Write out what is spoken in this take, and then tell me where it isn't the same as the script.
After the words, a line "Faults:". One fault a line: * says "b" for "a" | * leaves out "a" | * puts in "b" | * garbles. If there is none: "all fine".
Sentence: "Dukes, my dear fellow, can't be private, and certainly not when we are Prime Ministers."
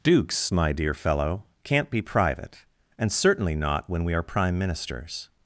"Dukes, my dear fellow, can't be private, and certainly not when we are Prime Ministers."
Faults:
all fine